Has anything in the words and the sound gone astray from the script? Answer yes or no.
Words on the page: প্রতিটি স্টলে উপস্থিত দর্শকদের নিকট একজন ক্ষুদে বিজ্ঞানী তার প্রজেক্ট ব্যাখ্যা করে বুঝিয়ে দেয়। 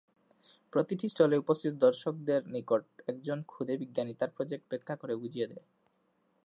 no